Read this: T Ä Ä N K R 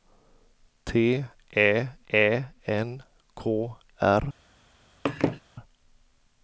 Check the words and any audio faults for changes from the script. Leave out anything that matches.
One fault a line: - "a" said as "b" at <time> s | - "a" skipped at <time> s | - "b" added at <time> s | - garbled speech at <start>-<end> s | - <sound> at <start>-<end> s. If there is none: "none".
- laugh at 5.1-5.4 s